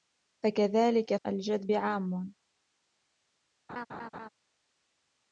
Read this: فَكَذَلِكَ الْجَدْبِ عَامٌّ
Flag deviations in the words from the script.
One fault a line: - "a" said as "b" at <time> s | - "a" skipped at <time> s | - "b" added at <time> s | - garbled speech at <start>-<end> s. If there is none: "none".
none